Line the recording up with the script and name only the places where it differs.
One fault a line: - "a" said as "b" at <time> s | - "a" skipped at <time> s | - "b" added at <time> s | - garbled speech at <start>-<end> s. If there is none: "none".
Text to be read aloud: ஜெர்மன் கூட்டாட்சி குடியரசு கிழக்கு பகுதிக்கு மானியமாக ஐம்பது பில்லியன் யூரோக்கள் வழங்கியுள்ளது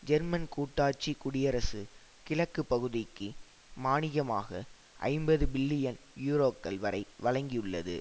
- "வரை" added at 6.8 s